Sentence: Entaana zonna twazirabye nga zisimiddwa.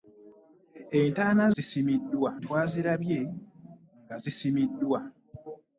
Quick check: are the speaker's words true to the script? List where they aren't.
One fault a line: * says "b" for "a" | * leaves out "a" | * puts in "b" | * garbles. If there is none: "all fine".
* says "zisimiddwa" for "zonna"